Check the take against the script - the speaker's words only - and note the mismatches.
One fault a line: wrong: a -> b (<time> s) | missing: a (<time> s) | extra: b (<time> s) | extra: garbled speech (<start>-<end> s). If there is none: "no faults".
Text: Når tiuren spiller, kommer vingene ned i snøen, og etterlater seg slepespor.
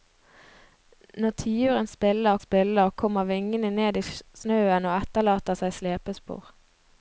extra: spiller (2.4 s)